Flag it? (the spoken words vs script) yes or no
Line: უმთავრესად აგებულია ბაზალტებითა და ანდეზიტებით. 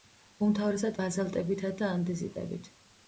yes